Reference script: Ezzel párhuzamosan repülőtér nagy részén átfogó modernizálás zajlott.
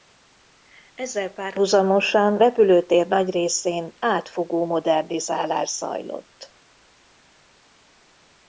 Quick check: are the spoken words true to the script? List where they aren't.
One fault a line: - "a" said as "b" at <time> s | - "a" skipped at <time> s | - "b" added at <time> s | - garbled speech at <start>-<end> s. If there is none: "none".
none